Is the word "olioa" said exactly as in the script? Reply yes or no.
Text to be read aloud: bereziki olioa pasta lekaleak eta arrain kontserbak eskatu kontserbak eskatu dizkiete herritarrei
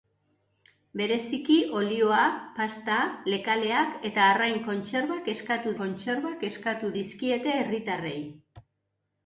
yes